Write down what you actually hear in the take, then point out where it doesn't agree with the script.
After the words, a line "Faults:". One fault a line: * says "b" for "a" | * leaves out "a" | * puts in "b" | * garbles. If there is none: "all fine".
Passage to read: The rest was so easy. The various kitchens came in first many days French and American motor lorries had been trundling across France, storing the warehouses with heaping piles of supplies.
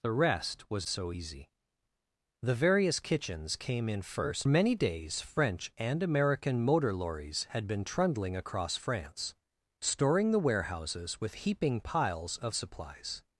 The rest was so easy. The various kitchens came in first many days French and American motor lorries had been trundling across France, storing the warehouses with heaping piles of supplies.
Faults:
all fine